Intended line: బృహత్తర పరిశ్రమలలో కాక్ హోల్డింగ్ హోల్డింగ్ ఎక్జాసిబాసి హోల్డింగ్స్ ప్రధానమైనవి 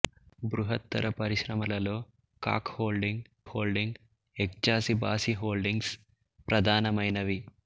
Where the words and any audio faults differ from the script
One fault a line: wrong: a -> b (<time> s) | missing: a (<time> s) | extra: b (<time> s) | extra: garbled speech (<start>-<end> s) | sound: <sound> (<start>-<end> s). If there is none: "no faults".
no faults